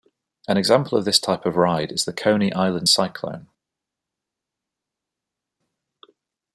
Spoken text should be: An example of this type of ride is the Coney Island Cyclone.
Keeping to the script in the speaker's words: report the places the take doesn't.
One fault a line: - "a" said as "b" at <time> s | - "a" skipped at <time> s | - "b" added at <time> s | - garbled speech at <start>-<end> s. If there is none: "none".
none